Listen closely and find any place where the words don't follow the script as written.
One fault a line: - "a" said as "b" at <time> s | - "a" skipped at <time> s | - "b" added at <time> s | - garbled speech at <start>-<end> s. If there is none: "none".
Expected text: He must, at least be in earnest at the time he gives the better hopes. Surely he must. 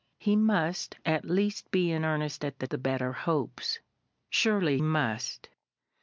- "time he gives" skipped at 2.6 s
- "he" skipped at 4.8 s